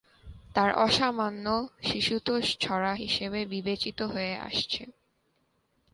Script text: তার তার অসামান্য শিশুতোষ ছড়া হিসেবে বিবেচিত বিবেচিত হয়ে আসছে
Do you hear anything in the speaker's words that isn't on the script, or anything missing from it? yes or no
yes